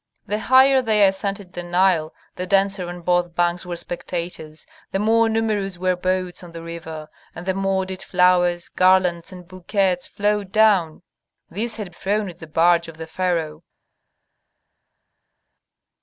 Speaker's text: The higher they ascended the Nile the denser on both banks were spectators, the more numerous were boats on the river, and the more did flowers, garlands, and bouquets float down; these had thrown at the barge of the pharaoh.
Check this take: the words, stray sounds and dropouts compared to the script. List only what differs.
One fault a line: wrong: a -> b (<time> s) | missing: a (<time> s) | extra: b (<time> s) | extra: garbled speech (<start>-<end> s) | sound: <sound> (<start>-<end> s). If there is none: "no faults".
no faults